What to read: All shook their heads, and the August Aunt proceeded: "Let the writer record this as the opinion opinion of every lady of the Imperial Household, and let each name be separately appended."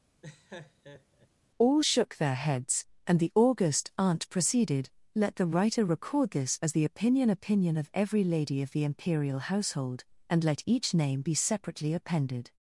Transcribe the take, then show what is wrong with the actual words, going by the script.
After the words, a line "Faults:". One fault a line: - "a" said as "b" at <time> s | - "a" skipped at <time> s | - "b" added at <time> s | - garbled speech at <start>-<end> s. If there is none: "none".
All shook their heads, and the August Aunt proceeded: "Let the writer record this as the opinion opinion of every lady of the Imperial Household, and let each name be separately appended."
Faults:
none